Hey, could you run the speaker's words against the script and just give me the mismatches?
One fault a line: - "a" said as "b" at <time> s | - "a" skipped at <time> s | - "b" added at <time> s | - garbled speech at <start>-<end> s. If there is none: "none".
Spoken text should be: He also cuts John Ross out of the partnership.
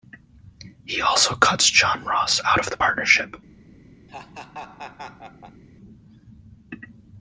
none